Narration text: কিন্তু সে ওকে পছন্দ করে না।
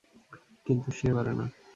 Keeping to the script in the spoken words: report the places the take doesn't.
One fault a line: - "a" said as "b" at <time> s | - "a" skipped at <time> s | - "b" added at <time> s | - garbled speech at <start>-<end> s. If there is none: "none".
- "ওকে পছন্দ" skipped at 1.1 s